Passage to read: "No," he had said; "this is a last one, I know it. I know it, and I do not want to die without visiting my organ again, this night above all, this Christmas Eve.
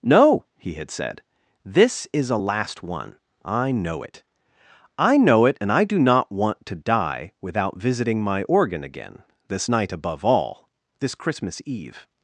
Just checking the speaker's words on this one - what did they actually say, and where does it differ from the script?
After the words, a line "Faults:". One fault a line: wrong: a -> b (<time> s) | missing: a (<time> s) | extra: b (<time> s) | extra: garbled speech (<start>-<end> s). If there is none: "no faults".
"No," he had said; "this is a last one, I know it. I know it, and I do not want to die without visiting my organ again, this night above all, this Christmas Eve.
Faults:
no faults